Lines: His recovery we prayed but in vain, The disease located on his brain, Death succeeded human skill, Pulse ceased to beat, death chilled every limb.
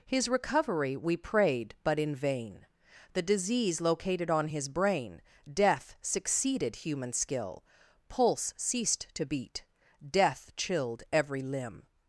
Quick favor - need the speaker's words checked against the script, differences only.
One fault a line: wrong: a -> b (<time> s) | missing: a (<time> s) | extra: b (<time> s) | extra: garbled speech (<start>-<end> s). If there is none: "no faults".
no faults